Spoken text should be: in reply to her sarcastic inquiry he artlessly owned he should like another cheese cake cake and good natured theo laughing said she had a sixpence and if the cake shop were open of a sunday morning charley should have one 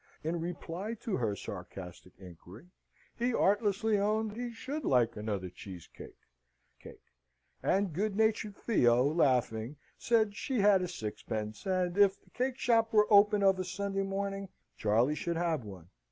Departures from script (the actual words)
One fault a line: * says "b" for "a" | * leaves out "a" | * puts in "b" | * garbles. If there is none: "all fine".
all fine